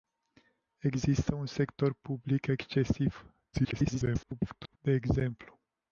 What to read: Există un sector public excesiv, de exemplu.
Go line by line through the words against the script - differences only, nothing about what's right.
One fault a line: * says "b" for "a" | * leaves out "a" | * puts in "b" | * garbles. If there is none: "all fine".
* garbles